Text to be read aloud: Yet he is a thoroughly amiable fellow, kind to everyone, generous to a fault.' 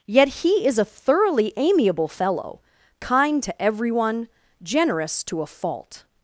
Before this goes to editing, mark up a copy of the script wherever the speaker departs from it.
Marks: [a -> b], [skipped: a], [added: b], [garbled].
Yet he is a thoroughly amiable fellow, kind to everyone, generous to a fault.'